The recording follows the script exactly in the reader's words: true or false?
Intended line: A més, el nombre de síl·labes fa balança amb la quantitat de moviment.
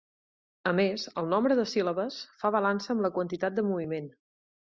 true